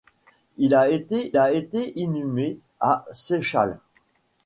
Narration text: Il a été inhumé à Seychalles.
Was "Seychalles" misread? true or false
false